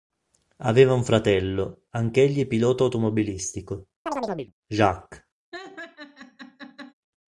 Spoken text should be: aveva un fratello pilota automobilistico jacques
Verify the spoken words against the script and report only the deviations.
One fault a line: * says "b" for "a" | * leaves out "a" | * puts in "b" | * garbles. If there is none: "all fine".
* puts in "anch'egli"